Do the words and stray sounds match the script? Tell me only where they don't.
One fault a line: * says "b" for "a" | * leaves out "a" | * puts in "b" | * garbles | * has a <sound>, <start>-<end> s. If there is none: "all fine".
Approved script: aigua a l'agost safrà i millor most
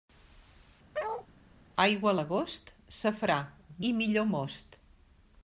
* has a bark, 0.9-1.3 s